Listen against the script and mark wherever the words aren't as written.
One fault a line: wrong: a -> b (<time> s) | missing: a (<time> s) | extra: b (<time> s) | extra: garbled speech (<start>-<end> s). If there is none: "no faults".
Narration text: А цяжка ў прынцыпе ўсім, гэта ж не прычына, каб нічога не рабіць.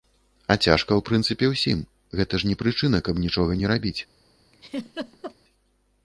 no faults